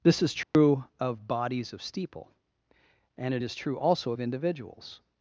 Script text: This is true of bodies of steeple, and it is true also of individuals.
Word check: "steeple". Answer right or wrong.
right